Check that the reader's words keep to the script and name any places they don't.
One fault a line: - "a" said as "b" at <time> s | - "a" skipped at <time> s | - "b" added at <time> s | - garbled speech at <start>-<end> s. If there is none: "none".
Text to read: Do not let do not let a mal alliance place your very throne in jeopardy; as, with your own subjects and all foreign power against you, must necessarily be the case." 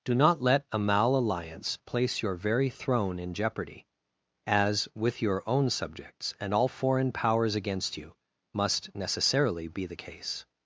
- "do not let" skipped at 0.7 s
- "power" said as "powers" at 7.1 s